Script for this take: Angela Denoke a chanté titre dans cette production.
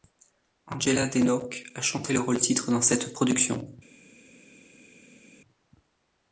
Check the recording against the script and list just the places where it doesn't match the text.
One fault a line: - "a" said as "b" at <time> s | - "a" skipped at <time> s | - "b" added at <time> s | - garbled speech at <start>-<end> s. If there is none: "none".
- "le rôle" added at 2.1 s